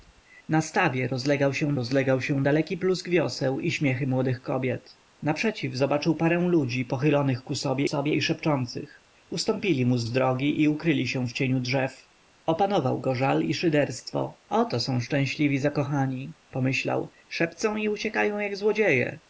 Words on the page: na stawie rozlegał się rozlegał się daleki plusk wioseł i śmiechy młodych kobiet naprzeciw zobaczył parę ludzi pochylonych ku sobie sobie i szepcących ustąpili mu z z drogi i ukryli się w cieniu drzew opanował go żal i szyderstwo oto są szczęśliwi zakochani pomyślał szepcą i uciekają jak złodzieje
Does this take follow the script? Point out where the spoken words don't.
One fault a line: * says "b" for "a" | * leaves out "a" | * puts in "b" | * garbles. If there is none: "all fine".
all fine